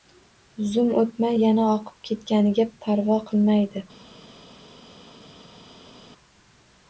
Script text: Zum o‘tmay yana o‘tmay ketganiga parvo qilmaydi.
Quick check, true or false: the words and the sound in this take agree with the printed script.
false